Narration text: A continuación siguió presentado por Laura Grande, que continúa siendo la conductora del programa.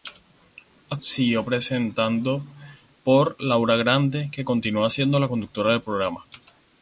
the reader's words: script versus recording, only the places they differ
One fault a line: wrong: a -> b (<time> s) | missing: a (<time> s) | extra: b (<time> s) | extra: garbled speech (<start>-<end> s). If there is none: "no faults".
missing: continuación (1.0 s)